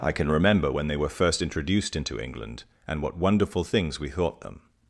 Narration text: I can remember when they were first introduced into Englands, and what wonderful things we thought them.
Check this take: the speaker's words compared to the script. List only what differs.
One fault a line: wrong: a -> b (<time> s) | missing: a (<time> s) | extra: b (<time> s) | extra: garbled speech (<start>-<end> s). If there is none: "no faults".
wrong: Englands -> England (2.2 s)